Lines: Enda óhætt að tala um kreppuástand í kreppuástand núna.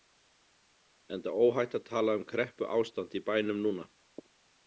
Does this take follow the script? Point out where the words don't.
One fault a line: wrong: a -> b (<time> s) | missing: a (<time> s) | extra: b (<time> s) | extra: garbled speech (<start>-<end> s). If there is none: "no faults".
wrong: kreppuástand -> bænum (3.3 s)